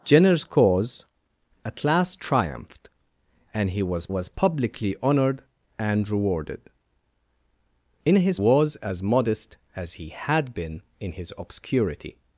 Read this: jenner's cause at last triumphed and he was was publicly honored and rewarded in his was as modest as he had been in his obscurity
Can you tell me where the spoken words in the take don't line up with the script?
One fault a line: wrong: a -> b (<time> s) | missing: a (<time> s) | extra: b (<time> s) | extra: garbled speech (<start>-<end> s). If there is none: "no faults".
no faults